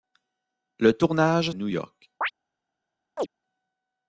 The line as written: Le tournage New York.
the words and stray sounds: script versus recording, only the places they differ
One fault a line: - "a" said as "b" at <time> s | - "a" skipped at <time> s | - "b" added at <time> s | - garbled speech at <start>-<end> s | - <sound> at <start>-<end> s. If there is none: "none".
- chirp at 2.2-2.3 s
- chirp at 3.2-3.3 s